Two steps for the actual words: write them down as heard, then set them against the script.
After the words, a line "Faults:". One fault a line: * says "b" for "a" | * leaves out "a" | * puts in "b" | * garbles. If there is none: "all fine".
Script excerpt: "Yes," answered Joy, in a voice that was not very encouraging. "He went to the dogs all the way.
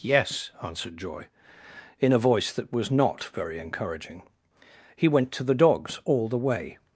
"Yes," answered Joy, in a voice that was not very encouraging. "He went to the dogs all the way.
Faults:
all fine